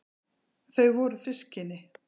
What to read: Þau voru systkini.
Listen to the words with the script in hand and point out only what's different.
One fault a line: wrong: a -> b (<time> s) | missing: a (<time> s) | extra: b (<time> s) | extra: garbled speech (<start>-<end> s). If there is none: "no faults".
no faults